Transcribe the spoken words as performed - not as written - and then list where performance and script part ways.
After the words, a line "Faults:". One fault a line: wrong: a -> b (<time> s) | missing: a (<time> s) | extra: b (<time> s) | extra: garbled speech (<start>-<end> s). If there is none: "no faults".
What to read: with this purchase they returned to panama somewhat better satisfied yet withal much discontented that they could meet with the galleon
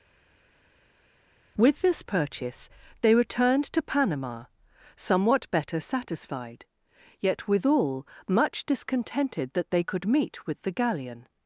with this purchase they returned to panama somewhat better satisfied yet withal much discontented that they could meet with the galleon
Faults:
no faults